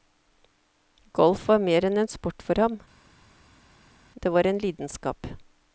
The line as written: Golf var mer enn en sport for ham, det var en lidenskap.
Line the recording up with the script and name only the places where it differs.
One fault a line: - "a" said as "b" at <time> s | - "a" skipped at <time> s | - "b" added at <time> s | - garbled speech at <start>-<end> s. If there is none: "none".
none